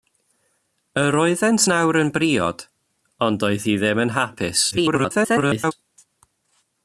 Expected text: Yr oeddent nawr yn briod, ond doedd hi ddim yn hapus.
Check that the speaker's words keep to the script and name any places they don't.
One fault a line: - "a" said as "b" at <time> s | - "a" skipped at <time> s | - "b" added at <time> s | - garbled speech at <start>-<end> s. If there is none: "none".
- garbled speech at 4.7-5.7 s